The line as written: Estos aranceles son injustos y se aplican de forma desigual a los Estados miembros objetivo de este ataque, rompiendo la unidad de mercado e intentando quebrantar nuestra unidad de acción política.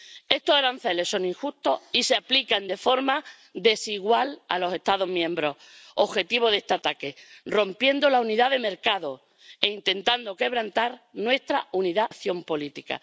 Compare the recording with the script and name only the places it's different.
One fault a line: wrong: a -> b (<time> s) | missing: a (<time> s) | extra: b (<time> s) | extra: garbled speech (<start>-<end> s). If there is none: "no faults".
missing: de (12.1 s)